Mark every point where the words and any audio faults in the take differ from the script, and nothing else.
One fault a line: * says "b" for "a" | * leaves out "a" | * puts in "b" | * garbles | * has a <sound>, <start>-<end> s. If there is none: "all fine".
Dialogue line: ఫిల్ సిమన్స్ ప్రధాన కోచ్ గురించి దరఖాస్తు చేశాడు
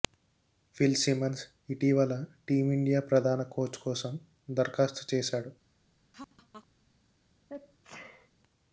* puts in "ఇటీవల టీమిండియా"
* says "కోసం" for "గురించి"
* has a laugh, 6.1-6.7 s
* has a sneeze, 7.5-8.3 s